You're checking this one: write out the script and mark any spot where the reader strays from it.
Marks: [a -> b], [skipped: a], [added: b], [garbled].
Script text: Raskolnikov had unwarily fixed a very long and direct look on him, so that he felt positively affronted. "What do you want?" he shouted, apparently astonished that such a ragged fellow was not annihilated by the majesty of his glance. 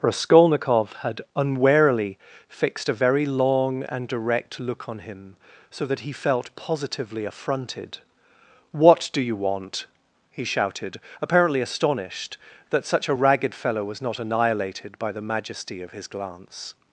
Raskolnikov had unwarily fixed a very long and direct look on him, so that he felt positively affronted. "What do you want?" he shouted, apparently astonished that such a ragged fellow was not annihilated by the majesty of his glance.